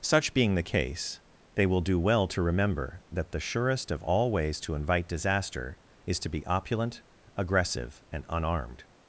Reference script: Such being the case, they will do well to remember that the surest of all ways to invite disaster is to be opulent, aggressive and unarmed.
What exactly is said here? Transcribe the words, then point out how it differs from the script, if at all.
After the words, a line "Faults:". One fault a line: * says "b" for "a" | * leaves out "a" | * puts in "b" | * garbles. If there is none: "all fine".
Such being the case, they will do well to remember that the surest of all ways to invite disaster is to be opulent, aggressive and unarmed.
Faults:
all fine